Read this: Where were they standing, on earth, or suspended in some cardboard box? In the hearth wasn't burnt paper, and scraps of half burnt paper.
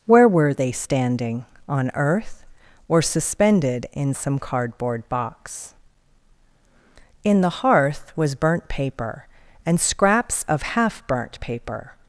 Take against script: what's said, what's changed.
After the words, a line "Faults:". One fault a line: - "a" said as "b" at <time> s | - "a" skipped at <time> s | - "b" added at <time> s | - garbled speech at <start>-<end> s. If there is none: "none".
Where were they standing, on earth, or suspended in some cardboard box? In the hearth was burnt paper, and scraps of half burnt paper.
Faults:
- "wasn't" said as "was" at 8.2 s